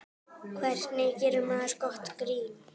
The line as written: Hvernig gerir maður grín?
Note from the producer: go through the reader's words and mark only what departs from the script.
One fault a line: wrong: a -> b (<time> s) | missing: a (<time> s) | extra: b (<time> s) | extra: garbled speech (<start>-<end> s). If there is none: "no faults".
extra: gott (1.8 s)